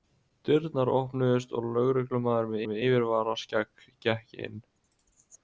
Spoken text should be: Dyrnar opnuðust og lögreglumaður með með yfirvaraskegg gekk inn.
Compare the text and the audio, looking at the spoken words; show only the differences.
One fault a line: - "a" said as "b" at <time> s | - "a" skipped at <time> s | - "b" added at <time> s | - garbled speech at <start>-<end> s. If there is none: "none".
none